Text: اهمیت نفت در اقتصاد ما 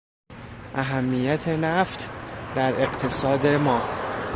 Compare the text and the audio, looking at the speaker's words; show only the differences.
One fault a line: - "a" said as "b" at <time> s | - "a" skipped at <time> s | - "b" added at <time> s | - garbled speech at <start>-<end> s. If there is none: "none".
none